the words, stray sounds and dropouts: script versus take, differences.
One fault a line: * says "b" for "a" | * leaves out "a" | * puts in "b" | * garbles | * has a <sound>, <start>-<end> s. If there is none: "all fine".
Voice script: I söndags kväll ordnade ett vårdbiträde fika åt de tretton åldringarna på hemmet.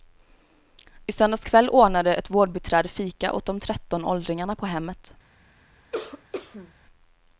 * has a cough, 5.9-6.7 s